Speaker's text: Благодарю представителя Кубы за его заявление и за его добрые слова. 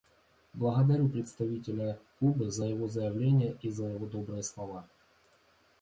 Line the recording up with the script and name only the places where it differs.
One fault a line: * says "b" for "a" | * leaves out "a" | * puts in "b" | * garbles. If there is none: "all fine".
all fine